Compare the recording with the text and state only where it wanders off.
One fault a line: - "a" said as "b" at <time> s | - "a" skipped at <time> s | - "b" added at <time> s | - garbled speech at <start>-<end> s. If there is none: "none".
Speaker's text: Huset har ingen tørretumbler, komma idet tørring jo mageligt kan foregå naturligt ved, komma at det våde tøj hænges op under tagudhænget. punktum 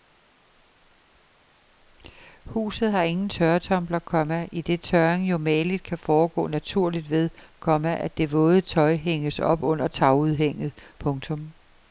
none